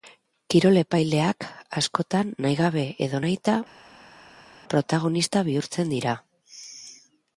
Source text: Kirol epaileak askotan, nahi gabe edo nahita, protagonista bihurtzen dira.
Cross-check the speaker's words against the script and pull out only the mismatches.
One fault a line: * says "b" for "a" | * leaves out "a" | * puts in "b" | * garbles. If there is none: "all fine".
all fine